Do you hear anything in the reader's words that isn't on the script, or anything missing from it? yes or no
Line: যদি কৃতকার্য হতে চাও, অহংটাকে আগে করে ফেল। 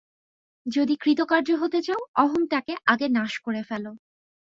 yes